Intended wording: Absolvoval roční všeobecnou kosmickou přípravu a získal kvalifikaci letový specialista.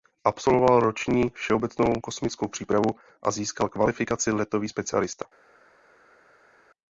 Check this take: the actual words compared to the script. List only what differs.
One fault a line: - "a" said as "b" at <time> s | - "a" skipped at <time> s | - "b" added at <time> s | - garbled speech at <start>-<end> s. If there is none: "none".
none